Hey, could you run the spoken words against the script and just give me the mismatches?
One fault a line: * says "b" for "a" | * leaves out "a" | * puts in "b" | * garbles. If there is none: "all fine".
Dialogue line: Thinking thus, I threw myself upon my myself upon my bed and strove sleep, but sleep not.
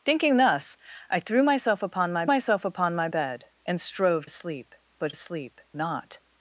all fine